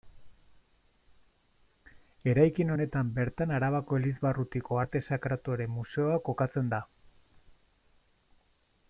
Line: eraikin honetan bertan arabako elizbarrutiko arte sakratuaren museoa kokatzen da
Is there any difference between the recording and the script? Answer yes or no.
no